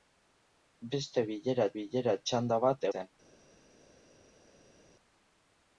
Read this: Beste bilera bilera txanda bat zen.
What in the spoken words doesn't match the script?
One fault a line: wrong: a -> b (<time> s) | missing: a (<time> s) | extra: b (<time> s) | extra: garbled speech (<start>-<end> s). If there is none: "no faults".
no faults